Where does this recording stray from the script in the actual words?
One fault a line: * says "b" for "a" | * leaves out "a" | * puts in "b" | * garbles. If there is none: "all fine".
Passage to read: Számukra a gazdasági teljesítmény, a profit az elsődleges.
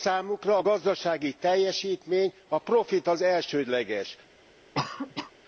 all fine